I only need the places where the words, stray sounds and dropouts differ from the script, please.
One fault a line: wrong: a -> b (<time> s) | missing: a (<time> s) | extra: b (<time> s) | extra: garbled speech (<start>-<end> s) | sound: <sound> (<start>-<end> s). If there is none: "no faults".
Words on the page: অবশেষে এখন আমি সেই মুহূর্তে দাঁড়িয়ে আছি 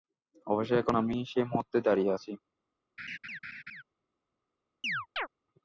sound: laugh (3.0-3.8 s)
sound: chirp (4.8-5.3 s)